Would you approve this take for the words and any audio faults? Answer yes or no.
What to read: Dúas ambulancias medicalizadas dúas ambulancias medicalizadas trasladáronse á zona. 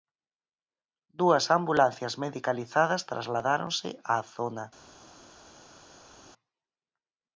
no